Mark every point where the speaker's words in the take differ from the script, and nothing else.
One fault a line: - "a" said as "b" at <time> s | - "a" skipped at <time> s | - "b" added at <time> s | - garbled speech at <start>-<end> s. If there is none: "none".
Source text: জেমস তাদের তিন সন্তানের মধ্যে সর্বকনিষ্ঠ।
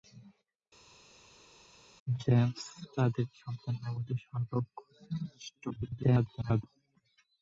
- "তিন" skipped at 3.2 s
- garbled speech at 5.7-6.6 s